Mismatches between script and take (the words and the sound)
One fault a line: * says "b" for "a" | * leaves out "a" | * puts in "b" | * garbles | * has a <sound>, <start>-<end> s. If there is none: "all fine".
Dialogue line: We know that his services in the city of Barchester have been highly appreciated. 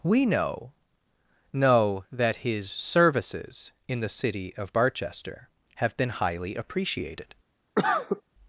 * puts in "know"
* has a cough, 7.8-8.2 s